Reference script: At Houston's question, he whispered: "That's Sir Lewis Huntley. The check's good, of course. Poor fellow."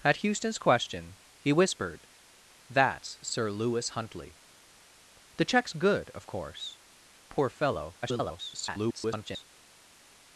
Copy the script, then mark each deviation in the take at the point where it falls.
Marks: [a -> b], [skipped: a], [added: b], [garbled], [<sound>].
At Houston's question, he whispered: "That's Sir Lewis Huntley. The check's good, of course. Poor fellow." [garbled]